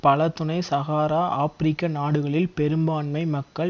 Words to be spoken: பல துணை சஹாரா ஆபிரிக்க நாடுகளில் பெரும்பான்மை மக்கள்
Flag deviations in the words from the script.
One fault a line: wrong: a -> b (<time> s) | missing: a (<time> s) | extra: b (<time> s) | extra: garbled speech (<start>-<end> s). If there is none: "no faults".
no faults